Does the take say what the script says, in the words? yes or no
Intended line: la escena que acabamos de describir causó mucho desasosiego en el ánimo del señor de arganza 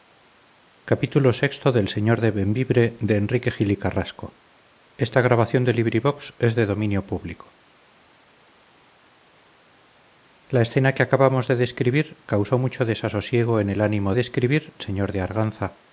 no